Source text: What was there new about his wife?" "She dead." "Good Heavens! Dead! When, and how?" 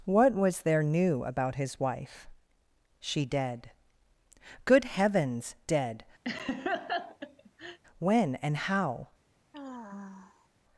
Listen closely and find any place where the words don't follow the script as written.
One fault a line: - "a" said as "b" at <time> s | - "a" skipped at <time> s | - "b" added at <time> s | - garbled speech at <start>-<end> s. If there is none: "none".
none